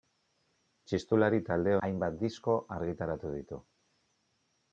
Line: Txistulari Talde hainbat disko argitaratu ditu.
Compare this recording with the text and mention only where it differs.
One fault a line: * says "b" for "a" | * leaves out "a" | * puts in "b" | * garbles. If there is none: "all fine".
all fine